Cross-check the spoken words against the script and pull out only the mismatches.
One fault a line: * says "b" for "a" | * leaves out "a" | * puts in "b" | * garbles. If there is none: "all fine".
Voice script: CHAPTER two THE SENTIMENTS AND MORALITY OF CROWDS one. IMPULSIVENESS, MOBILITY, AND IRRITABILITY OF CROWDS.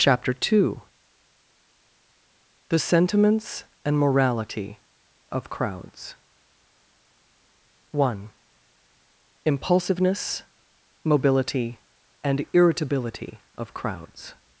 all fine